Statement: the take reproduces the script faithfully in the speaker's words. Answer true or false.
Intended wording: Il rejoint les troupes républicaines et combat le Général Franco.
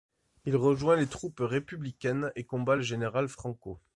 true